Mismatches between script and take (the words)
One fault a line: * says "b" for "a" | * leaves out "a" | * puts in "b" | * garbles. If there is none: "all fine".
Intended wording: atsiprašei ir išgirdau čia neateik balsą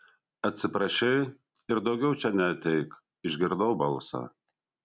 * says "daugiau" for "išgirdau"
* puts in "išgirdau"